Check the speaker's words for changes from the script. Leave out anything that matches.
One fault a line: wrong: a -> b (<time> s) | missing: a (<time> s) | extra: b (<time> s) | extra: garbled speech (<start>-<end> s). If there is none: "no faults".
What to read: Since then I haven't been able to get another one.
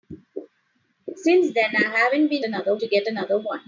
wrong: able -> another (2.4 s)